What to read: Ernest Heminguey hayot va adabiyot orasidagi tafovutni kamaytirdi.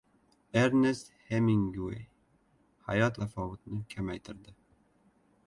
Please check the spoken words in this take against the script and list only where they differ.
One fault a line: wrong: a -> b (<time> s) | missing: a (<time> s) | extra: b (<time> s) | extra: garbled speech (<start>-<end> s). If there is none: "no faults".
missing: va adabiyot orasidagi (3.2 s)